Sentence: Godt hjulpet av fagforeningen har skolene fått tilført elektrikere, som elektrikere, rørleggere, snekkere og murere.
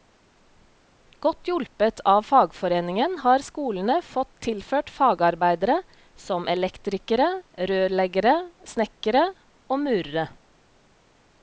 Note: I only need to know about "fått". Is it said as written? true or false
true